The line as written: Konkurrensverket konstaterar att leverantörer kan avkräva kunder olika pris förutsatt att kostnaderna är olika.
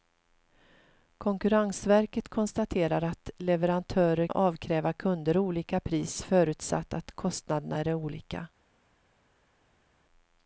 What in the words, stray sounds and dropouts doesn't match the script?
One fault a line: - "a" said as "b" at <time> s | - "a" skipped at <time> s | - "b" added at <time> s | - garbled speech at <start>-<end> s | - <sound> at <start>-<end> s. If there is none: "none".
- "kan" skipped at 4.3 s